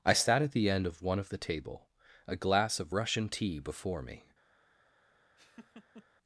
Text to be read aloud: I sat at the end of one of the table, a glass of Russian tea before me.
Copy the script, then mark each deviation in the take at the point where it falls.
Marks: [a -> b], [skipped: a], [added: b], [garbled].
I sat at the end of one of the table, a glass of Russian tea before me.